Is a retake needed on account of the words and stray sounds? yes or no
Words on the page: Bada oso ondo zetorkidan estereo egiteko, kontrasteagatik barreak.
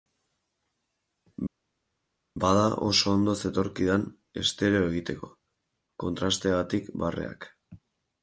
no